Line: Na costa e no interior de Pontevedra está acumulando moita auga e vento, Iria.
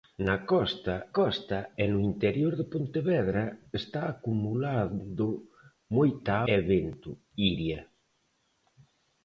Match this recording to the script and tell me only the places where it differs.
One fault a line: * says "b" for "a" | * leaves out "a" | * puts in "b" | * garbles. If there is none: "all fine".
* puts in "costa"
* leaves out "auga"